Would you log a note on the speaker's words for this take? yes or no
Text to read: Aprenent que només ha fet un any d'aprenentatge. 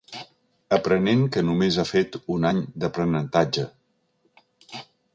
no